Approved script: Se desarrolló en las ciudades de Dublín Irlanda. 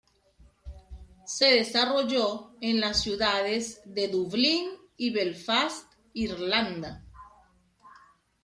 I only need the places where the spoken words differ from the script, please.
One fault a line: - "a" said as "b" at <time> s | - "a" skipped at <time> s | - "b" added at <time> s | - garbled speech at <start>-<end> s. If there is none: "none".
- "y Belfast" added at 5.0 s